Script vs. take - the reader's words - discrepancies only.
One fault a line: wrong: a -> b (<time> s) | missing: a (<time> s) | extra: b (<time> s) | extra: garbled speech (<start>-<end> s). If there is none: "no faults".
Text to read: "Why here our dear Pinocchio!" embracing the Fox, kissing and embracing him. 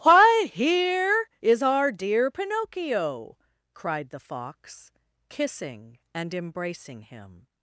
extra: is (1.4 s)
wrong: embracing -> cried (3.7 s)